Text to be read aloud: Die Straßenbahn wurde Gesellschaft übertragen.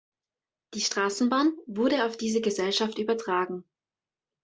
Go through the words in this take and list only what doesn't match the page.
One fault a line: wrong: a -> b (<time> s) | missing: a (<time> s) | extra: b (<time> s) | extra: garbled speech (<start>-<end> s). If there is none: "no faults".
extra: auf diese (2.1 s)